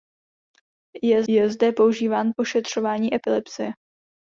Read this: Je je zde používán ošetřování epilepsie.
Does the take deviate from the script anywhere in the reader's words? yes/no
no